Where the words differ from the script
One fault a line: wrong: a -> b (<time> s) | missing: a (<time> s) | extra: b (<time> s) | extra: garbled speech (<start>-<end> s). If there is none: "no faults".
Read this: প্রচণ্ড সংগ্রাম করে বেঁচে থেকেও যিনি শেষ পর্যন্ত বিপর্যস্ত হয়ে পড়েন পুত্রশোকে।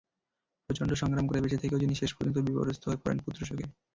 no faults